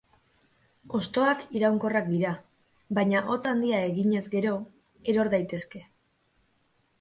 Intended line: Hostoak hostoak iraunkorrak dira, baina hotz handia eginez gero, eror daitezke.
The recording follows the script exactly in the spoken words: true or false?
false